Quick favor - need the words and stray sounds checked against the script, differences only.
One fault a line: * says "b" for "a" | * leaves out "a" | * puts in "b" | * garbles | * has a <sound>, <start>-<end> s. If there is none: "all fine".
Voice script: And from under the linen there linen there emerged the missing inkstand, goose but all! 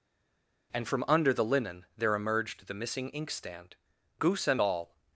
* leaves out "linen there"
* says "and" for "but"